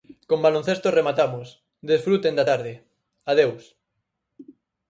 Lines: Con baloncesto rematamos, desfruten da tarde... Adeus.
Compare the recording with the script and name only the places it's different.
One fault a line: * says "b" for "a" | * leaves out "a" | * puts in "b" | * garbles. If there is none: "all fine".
all fine